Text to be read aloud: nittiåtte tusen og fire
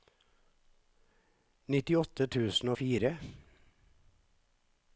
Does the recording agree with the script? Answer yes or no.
yes